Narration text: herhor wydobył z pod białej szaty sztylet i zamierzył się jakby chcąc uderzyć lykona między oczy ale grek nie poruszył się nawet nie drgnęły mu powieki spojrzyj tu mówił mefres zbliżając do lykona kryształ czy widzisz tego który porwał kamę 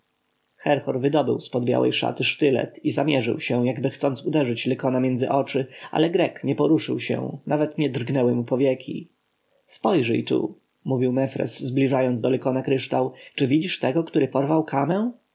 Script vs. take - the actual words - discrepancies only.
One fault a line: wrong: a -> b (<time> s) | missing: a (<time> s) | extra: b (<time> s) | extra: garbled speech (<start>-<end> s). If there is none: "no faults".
no faults